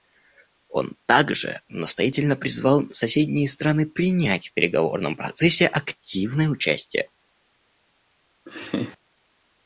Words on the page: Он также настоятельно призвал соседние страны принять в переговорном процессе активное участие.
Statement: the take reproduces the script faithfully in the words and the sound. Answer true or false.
false